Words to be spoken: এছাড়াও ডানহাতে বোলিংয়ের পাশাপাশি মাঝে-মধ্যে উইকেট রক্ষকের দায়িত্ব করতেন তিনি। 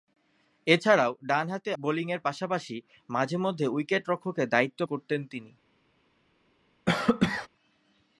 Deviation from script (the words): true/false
false